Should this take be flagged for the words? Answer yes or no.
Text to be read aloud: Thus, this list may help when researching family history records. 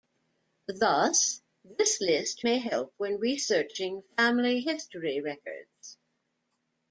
no